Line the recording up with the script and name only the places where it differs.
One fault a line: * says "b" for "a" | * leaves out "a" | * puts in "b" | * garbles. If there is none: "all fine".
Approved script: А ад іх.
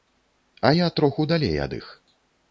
* puts in "я троху далей"